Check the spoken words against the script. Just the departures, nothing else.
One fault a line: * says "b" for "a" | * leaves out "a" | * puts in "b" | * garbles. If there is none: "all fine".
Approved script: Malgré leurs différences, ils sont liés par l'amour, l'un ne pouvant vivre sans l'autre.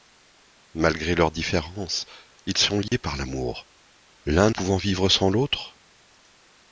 * leaves out "ne"